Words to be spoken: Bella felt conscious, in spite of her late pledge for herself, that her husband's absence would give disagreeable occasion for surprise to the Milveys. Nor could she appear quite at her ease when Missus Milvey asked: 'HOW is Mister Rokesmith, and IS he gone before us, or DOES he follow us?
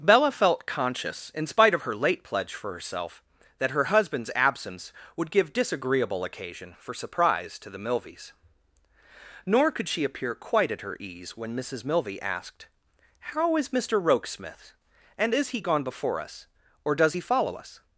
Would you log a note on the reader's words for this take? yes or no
no